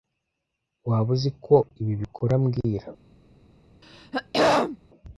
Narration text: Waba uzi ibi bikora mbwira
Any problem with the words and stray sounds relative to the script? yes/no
yes